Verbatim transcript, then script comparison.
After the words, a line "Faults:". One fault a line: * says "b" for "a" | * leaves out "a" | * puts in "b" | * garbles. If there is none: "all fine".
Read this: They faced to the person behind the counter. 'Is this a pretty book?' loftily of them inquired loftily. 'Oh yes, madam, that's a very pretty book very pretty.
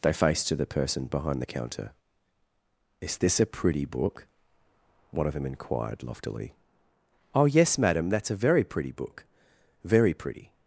They faced to the person behind the counter. 'Is this a pretty book?' one of them inquired loftily. 'Oh yes, madam, that's a very pretty book very pretty.
Faults:
* says "one" for "loftily"